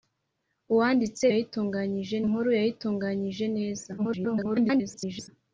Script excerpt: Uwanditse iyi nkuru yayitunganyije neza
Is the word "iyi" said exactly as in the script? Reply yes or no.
no